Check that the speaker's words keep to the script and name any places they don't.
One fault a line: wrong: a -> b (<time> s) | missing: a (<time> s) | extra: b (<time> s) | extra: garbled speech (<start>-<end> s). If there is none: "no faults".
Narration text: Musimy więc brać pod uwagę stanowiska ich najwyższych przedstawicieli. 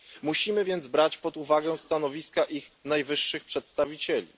no faults